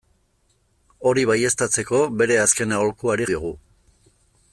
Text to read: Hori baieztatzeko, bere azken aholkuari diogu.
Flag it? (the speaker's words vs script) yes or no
no